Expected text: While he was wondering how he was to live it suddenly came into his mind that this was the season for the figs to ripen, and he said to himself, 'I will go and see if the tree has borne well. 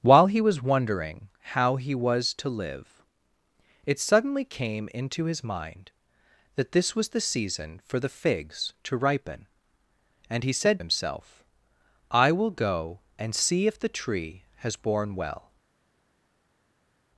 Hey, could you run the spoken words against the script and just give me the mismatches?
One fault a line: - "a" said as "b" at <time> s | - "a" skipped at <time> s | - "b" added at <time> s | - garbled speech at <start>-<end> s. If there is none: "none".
- "to" skipped at 10.8 s